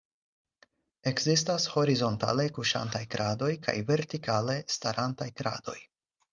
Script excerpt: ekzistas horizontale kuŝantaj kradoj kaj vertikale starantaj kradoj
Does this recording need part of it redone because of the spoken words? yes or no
no